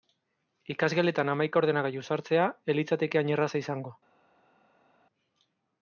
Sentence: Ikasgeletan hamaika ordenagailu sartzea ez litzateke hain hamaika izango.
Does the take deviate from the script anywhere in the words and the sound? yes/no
yes